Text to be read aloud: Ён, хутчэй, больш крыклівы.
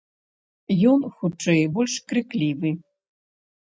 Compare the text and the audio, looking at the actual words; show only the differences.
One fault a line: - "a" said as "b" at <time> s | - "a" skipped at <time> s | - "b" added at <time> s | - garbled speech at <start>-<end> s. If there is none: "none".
none